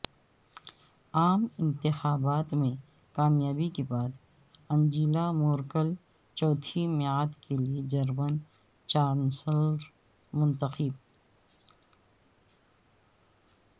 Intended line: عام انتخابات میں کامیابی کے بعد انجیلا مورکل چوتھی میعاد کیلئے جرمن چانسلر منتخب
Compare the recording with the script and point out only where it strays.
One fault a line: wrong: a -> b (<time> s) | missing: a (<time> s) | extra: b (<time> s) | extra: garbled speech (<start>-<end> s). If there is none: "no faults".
no faults